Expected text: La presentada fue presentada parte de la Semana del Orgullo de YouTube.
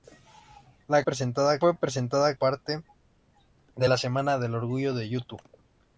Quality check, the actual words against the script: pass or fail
pass